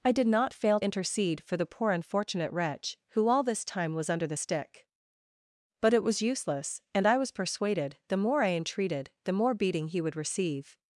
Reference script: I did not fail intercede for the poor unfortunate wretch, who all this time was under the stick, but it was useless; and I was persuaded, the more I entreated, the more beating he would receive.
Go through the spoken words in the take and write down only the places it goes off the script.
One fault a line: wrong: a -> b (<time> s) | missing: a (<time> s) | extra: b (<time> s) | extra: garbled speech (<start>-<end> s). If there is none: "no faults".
no faults